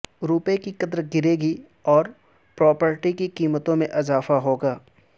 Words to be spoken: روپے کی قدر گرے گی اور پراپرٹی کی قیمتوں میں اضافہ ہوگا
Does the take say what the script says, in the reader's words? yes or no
yes